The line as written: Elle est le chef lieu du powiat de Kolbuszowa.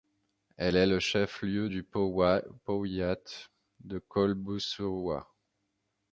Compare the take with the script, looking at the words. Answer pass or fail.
pass